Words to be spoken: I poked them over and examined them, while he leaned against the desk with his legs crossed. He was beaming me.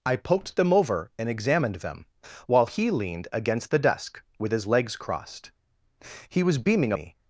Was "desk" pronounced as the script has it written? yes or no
yes